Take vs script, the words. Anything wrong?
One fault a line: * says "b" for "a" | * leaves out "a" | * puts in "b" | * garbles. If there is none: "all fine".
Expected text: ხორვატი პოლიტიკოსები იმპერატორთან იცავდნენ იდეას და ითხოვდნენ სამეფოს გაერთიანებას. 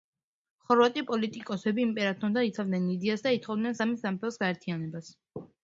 * puts in "სამი"